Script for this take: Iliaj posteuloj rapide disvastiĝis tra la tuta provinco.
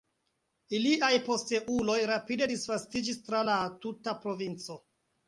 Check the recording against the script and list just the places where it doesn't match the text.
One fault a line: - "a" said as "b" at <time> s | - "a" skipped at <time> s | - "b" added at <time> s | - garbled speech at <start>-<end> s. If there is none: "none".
none